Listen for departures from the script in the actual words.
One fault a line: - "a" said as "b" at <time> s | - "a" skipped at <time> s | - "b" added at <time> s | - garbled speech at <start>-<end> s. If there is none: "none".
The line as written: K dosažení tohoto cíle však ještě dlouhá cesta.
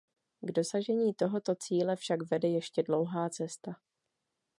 - "vede" added at 2.3 s